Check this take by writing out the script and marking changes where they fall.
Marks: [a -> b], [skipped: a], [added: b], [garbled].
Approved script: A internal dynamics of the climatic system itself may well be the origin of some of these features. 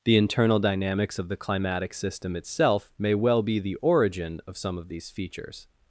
[A -> The] internal dynamics of the climatic system itself may well be the origin of some of these features.